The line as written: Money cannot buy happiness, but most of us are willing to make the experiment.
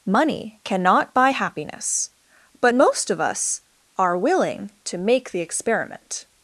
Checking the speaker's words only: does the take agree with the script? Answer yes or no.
yes